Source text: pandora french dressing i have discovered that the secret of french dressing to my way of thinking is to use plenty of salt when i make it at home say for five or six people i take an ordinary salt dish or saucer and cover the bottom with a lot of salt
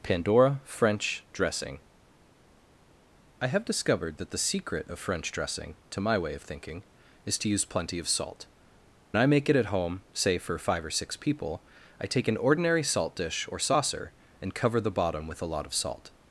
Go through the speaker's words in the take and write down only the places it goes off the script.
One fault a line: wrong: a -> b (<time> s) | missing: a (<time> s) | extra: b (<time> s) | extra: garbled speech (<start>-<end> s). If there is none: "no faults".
missing: when (8.5 s)